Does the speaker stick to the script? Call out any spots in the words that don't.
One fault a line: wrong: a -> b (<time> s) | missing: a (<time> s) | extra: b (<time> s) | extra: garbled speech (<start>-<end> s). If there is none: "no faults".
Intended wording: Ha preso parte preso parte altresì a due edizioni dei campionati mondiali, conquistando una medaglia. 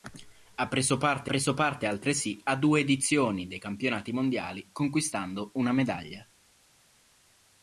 no faults